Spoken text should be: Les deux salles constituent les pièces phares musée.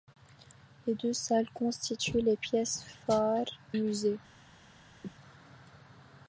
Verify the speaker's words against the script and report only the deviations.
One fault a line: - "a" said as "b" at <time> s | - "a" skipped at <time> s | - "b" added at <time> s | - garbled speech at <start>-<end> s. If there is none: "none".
none